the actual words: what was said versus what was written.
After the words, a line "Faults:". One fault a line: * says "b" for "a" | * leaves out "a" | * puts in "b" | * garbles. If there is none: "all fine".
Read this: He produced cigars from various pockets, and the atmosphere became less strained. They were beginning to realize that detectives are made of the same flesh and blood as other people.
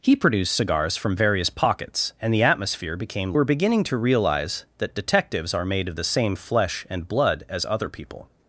He produced cigars from various pockets, and the atmosphere became were beginning to realize that detectives are made of the same flesh and blood as other people.
Faults:
* leaves out "less strained They"